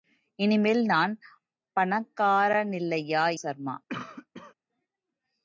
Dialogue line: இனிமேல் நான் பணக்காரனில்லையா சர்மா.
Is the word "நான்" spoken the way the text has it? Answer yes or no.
yes